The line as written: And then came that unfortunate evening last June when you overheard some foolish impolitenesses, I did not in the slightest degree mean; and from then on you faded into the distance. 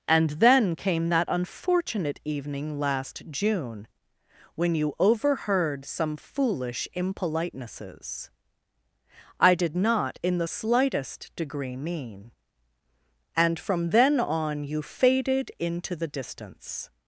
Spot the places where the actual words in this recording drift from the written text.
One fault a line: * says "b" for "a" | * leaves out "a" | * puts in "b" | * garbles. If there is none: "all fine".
all fine